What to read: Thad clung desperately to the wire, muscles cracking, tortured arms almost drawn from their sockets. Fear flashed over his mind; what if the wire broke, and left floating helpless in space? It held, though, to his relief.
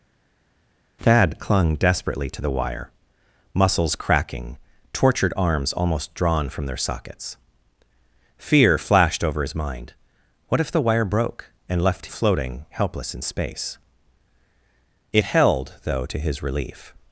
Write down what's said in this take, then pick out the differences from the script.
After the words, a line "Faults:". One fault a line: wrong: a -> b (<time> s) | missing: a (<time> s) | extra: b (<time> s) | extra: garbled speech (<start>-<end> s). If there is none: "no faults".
Thad clung desperately to the wire, muscles cracking, tortured arms almost drawn from their sockets. Fear flashed over his mind; what if the wire broke, and left floating helpless in space? It held, though, to his relief.
Faults:
no faults